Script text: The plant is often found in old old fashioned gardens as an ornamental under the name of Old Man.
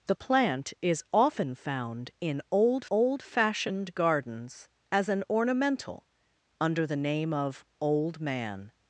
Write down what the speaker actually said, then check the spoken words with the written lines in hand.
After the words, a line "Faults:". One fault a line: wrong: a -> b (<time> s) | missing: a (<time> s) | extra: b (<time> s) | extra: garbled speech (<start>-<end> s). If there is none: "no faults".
The plant is often found in old old fashioned gardens as an ornamental under the name of Old Man.
Faults:
no faults